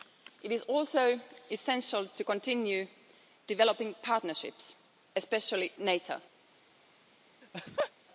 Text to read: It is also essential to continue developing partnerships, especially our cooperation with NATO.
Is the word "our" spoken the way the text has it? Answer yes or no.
no